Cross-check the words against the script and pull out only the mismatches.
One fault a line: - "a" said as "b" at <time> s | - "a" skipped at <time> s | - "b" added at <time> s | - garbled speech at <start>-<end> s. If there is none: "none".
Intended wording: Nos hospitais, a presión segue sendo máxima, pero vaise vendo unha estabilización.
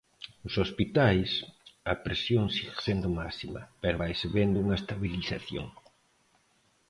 none